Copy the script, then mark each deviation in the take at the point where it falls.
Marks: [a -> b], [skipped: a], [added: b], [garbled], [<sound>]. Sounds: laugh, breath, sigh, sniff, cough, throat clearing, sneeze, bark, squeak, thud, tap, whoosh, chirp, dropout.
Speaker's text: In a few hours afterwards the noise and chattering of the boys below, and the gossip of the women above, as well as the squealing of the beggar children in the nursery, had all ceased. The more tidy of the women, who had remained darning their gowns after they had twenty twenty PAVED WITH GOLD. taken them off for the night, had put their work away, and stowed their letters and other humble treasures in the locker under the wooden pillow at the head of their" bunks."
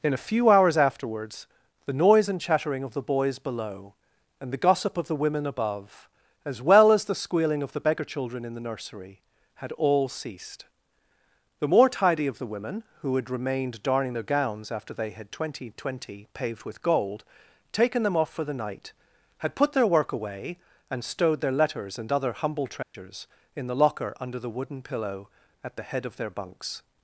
In a few hours afterwards the noise and chattering of the boys below, and the gossip of the women above, as well as the squealing of the beggar children in the nursery, had all ceased. The more tidy of the women, who had remained darning their gowns after they had twenty twenty PAVED WITH GOLD. taken them off for the night, had put their work away, and stowed their letters and other humble treasures [dropout] in the locker under the wooden pillow at the head of their" bunks."